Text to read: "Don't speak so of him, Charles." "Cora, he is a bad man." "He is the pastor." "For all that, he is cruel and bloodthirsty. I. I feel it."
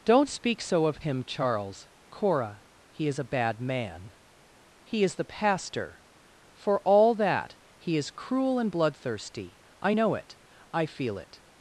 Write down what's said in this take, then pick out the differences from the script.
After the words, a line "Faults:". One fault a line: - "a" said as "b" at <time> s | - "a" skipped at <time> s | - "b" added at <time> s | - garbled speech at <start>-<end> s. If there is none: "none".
"Don't speak so of him, Charles." "Cora, he is a bad man." "He is the pastor." "For all that, he is cruel and bloodthirsty. I know it. I feel it."
Faults:
- "know it" added at 9.9 s